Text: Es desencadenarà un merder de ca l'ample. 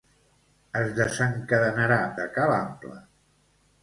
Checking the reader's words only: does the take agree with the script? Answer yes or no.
no